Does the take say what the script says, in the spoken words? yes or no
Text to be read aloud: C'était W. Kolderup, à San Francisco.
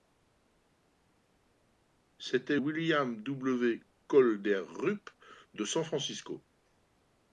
no